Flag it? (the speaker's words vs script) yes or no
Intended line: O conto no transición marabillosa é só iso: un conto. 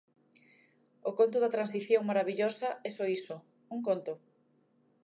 yes